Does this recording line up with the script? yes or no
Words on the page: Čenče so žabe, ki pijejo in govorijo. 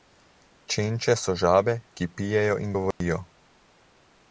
yes